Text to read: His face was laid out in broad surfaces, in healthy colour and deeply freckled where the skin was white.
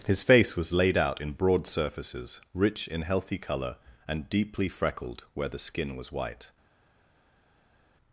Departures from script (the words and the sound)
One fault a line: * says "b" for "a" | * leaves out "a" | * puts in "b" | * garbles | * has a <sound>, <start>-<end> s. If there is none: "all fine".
* puts in "rich"